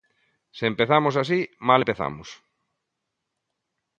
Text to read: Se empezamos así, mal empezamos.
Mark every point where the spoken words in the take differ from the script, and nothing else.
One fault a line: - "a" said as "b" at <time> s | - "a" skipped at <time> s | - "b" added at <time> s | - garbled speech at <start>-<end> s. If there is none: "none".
none